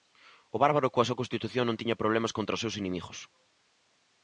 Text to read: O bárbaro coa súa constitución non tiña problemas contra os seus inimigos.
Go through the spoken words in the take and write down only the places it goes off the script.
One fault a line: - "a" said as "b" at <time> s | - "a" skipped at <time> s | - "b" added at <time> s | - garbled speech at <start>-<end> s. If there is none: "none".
none